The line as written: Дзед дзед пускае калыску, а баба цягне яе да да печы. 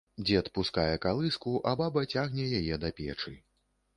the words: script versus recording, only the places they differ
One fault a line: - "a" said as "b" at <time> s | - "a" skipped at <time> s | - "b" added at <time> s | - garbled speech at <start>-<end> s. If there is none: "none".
- "дзед" skipped at 0.5 s
- "да" skipped at 2.9 s